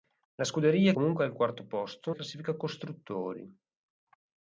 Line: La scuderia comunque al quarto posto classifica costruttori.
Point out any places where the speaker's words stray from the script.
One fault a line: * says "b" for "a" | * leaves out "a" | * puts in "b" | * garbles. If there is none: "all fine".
all fine